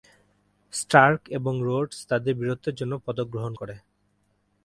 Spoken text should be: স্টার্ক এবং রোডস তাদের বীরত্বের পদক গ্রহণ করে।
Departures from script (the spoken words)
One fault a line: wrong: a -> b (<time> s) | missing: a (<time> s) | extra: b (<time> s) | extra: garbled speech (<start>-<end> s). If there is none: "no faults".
extra: জন্য (2.8 s)